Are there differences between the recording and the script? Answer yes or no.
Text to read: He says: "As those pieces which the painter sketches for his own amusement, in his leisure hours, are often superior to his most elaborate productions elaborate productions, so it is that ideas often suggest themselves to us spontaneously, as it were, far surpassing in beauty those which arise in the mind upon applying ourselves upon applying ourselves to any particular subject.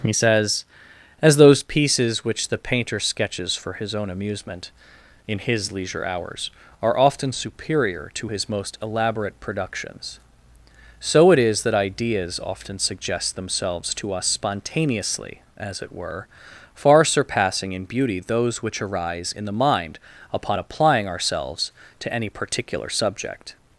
yes